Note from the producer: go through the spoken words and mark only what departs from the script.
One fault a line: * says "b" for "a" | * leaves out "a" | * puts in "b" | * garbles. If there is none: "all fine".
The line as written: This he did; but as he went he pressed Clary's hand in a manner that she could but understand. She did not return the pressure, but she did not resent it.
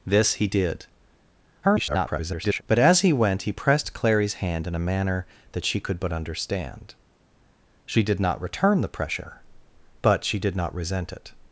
* garbles